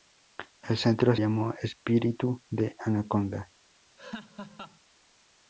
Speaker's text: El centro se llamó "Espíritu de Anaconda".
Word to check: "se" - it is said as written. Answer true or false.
false